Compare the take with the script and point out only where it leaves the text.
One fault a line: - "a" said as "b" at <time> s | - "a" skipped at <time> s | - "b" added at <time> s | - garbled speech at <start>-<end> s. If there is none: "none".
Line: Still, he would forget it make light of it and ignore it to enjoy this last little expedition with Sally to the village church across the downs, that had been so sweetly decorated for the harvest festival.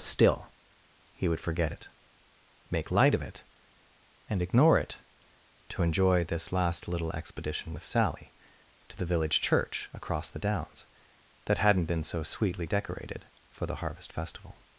- "had" said as "hadn't" at 11.6 s